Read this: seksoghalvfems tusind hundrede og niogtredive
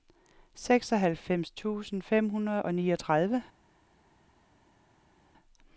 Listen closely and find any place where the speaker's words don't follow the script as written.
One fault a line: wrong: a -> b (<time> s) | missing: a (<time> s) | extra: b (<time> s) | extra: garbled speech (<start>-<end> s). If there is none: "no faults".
extra: fem (2.0 s)